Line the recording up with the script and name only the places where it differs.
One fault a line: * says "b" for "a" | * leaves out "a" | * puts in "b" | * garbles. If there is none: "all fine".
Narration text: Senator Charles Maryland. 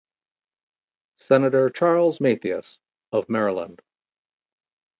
* puts in "Mathias of"